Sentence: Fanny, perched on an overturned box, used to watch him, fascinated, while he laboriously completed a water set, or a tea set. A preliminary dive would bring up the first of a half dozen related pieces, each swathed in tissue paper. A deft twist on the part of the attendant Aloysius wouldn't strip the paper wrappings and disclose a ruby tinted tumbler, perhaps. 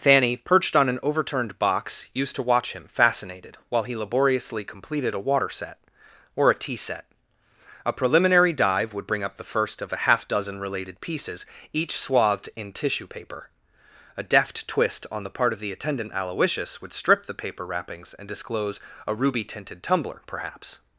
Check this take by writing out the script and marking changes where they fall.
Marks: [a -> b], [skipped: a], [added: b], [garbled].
Fanny, perched on an overturned box, used to watch him, fascinated, while he laboriously completed a water set, or a tea set. A preliminary dive would bring up the first of a half dozen related pieces, each swathed in tissue paper. A deft twist on the part of the attendant Aloysius [wouldn't -> would] strip the paper wrappings and disclose a ruby tinted tumbler, perhaps.